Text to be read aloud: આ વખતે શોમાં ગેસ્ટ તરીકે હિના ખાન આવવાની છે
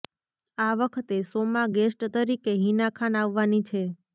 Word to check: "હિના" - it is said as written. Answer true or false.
true